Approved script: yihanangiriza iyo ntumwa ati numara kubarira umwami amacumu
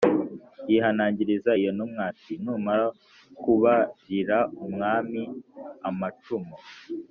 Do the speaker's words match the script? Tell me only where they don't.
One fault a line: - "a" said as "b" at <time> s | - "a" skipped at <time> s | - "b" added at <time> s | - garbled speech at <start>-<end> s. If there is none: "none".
none